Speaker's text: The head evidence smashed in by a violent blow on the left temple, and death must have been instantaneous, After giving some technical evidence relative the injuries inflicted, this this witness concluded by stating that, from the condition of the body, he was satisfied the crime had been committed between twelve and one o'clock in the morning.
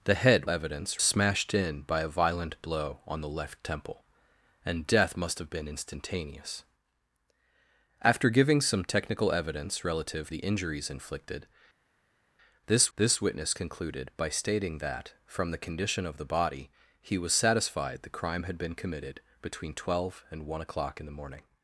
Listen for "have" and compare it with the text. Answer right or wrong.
right